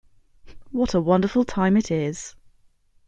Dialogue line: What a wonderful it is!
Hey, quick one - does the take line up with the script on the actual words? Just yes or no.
no